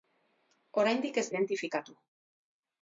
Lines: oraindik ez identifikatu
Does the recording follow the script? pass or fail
pass